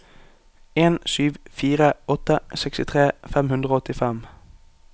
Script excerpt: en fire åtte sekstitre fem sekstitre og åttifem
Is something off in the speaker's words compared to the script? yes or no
yes